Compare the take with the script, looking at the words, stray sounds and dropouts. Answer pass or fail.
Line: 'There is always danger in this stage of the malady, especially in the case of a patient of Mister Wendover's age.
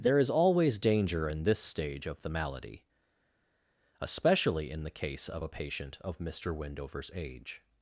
pass